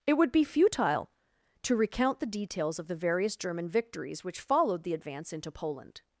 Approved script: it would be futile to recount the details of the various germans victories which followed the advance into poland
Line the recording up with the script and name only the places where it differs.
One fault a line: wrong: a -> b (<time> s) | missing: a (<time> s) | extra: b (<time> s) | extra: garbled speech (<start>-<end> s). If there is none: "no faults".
wrong: germans -> german (3.4 s)